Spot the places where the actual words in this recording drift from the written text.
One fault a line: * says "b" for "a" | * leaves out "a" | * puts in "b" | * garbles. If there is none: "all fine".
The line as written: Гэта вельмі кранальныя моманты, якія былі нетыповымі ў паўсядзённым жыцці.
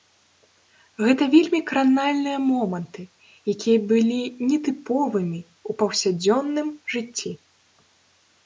all fine